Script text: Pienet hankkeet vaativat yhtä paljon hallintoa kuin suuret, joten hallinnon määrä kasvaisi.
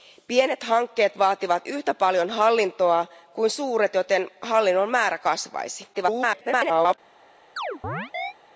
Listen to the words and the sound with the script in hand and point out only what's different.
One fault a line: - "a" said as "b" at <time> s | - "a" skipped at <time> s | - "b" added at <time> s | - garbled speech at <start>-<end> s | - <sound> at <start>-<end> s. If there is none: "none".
- garbled speech at 5.9-7.0 s
- chirp at 7.6-8.3 s